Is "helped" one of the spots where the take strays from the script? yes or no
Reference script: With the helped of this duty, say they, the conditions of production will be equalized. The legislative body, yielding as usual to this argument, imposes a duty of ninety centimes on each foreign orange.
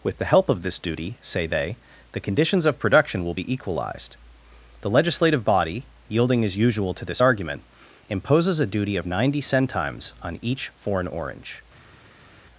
yes